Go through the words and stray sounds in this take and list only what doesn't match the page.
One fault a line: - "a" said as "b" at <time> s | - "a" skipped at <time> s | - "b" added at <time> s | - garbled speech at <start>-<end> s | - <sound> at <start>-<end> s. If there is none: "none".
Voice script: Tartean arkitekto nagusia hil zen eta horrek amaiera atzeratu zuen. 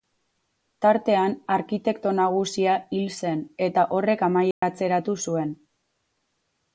- dropout at 4.5-4.6 s